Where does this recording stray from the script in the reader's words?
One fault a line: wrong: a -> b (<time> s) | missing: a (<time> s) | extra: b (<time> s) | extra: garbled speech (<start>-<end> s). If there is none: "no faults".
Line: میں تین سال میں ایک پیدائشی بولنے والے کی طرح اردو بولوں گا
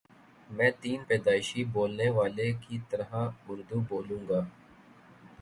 missing: سال میں ایک (1.1 s)